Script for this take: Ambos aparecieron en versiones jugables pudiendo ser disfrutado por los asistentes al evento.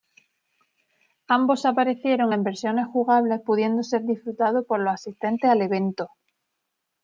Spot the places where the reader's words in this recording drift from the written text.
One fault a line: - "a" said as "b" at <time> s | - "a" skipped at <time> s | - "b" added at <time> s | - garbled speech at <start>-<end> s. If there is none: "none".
none